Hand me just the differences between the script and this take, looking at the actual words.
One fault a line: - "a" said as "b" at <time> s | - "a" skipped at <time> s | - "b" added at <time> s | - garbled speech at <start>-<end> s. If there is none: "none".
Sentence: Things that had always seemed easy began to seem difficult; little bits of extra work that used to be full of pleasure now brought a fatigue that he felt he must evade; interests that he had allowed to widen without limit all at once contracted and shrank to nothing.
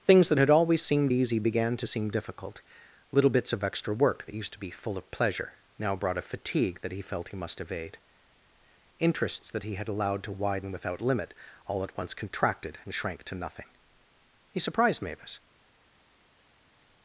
- "He surprised Mavis" added at 14.5 s